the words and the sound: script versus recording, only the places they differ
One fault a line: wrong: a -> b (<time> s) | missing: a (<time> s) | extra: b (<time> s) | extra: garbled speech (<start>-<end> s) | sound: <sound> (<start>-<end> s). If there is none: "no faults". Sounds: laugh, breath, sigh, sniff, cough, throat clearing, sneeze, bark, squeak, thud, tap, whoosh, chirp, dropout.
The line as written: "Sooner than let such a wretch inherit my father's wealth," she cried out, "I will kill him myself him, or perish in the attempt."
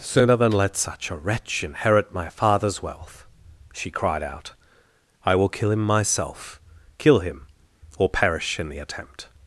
extra: kill (7.0 s)